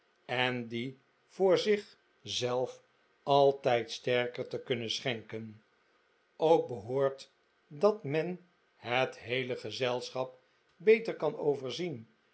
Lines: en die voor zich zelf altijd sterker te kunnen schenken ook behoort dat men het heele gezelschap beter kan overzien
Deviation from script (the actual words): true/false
false